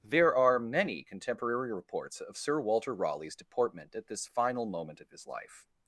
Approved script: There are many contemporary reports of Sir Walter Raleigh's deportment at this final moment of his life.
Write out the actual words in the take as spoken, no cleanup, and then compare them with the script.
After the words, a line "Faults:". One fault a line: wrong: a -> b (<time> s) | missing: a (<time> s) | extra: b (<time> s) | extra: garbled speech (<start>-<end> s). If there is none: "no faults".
There are many contemporary reports of Sir Walter Raleigh's deportment at this final moment of his life.
Faults:
no faults